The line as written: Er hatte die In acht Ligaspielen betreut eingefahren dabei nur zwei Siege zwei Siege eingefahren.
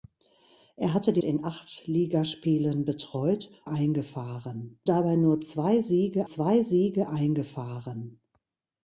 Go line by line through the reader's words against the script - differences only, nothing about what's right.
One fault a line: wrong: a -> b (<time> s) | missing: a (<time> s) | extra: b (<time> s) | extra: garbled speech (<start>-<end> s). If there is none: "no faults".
no faults